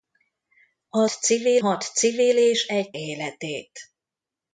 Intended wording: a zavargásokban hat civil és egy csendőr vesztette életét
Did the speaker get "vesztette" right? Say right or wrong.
wrong